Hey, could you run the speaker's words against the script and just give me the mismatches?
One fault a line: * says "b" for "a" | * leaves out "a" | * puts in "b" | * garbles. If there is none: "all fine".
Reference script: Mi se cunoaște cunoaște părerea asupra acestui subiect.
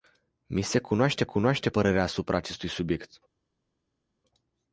all fine